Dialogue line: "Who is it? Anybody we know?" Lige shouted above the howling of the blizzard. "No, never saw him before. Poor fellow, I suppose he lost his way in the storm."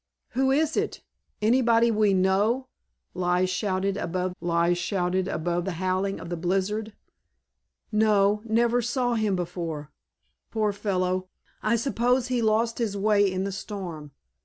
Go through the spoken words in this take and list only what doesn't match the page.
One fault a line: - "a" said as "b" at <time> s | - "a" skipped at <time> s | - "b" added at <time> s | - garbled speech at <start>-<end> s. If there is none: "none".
- "lige shouted above" added at 4.4 s